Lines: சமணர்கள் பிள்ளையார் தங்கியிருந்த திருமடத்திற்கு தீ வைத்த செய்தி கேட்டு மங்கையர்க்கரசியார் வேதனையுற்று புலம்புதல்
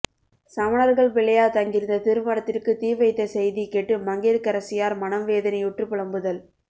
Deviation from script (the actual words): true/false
true